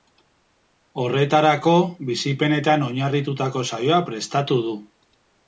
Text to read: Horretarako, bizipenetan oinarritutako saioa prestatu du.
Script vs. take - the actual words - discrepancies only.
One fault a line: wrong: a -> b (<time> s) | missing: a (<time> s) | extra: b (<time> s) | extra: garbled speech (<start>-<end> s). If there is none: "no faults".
no faults